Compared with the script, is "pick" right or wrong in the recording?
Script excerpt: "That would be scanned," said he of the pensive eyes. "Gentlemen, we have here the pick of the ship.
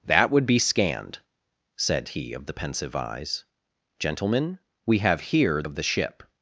wrong